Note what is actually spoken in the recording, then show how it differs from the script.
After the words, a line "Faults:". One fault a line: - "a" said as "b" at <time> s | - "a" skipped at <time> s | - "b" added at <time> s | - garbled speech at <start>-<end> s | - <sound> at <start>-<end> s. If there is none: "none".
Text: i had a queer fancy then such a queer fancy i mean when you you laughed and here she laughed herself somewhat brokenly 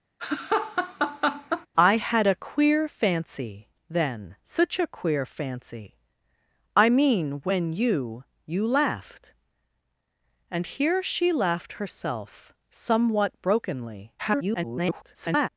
i had a queer fancy then such a queer fancy i mean when you you laughed and here she laughed herself somewhat brokenly [garbled]
Faults:
- laugh at 0.2-1.7 s
- garbled speech at 14.2-15.5 s